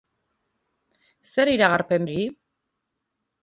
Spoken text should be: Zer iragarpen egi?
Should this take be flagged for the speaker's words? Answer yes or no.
no